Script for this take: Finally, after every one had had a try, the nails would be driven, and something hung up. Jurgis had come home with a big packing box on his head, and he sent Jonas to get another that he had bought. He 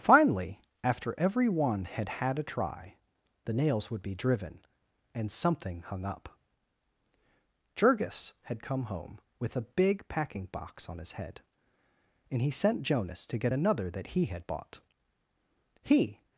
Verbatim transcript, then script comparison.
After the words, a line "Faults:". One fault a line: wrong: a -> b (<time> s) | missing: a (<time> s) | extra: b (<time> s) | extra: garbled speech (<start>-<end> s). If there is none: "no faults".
Finally, after every one had had a try, the nails would be driven, and something hung up. Jurgis had come home with a big packing box on his head, and he sent Jonas to get another that he had bought. He
Faults:
no faults